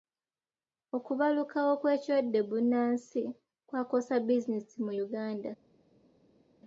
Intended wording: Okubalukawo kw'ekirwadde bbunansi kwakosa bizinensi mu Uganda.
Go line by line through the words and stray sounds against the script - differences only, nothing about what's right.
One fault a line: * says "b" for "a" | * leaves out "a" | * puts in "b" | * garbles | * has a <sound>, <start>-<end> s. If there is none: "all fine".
all fine